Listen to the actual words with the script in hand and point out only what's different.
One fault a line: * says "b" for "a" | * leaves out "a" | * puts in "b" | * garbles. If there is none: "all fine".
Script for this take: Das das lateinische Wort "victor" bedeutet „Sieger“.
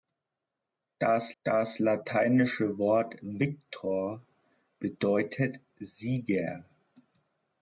all fine